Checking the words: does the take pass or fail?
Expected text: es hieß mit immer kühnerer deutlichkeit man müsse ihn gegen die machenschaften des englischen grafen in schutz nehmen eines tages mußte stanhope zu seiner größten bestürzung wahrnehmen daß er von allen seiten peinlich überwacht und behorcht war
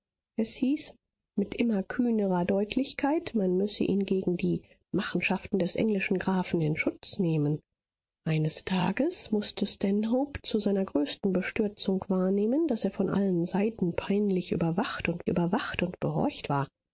fail